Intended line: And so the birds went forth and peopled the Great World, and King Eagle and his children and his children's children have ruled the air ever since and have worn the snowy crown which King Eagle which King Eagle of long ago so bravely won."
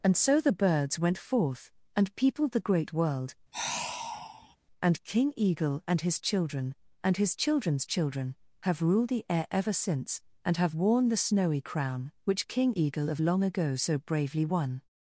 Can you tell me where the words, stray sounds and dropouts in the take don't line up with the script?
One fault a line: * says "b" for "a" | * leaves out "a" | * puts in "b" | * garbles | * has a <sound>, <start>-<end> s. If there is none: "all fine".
* has a sigh, 3.5-4.6 s
* leaves out "which King Eagle"